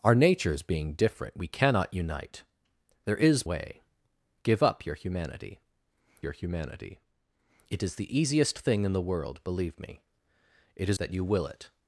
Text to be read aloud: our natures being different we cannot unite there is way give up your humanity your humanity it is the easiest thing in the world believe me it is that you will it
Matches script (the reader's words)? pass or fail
pass